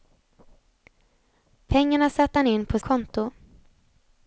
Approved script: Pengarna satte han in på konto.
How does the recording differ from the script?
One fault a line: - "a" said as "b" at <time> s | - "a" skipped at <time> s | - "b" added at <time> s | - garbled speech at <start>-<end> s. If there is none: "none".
none